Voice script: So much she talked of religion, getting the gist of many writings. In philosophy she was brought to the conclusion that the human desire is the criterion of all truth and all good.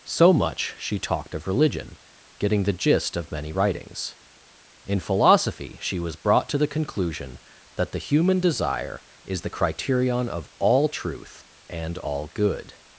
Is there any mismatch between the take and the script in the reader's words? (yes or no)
no